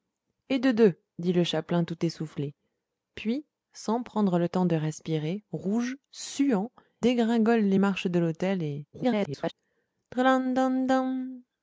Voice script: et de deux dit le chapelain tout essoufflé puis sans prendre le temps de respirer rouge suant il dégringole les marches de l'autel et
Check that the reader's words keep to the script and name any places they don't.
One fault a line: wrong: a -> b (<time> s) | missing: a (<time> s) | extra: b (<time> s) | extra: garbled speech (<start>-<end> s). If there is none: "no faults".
missing: il (6.7 s)
extra: garbled speech (8.9-9.5 s)